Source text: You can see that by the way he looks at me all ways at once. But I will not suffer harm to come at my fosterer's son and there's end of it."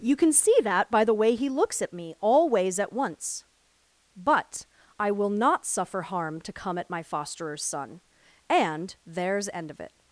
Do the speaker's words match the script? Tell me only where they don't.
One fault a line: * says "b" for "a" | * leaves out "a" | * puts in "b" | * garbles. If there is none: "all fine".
all fine